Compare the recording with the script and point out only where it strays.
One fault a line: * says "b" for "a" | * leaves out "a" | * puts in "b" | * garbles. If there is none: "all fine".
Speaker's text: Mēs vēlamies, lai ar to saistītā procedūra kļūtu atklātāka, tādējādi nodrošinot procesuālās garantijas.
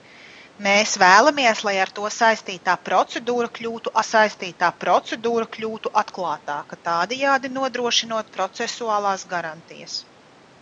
* puts in "saistītā procedūra kļūtu"